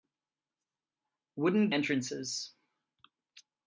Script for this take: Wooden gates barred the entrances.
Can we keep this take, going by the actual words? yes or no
no